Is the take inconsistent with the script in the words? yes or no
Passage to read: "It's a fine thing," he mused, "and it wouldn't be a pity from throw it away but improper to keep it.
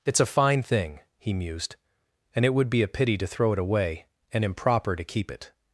yes